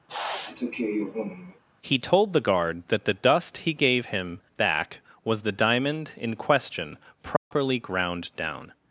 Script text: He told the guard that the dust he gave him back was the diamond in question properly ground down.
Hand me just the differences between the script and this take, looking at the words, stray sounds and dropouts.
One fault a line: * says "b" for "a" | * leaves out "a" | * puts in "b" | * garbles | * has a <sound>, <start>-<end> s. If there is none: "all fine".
* has a sniff, 0.1-1.6 s
* has a dropout, 7.4-7.5 s